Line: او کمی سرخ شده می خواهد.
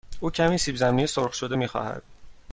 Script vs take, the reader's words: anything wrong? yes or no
yes